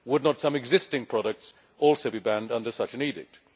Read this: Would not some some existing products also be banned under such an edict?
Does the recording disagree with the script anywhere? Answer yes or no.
yes